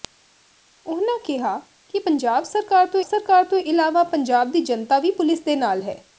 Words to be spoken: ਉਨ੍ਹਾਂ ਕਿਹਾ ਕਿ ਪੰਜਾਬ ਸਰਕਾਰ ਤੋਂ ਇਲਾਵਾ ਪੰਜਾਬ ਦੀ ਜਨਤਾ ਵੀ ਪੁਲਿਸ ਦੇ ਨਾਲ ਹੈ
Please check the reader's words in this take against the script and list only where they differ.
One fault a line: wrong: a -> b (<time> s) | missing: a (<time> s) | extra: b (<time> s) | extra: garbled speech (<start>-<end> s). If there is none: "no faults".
extra: ਸਰਕਾਰ ਤੋਂ (3.0 s)